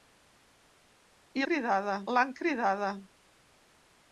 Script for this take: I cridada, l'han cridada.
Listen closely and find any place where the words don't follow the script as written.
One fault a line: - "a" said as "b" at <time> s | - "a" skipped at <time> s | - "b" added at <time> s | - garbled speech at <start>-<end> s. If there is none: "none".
none